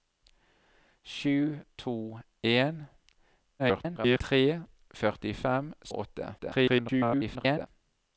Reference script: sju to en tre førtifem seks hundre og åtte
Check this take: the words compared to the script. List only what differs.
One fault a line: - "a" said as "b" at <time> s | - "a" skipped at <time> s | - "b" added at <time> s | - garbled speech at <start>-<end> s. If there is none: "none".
- garbled speech at 3.6-4.2 s
- "seks hundre" skipped at 5.7 s
- garbled speech at 6.4-7.7 s